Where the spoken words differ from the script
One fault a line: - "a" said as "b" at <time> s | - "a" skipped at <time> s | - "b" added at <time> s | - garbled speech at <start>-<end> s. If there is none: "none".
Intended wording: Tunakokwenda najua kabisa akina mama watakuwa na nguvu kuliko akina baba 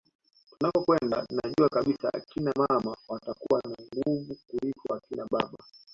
none